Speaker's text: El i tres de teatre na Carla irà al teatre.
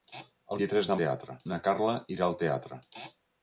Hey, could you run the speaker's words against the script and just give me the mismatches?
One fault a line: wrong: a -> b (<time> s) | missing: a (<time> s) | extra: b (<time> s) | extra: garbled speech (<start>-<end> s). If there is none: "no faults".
no faults